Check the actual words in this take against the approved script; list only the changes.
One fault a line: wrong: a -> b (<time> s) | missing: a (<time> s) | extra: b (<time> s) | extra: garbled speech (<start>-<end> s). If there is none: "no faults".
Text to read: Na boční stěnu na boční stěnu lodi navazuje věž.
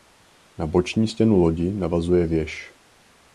missing: na boční stěnu (1.4 s)